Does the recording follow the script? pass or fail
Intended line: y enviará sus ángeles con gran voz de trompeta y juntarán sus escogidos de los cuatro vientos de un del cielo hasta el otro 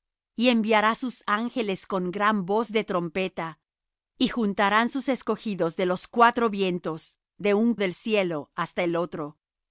pass